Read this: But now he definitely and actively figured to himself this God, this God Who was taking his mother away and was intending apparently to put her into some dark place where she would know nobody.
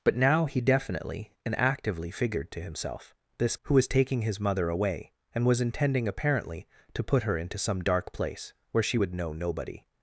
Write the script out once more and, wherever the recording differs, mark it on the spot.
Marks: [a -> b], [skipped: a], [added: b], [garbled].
But now he definitely and actively figured to himself this [skipped: God, this God] Who was taking his mother away and was intending apparently to put her into some dark place where she would know nobody.